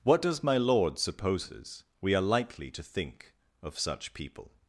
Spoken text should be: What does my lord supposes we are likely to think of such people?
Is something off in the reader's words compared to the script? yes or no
no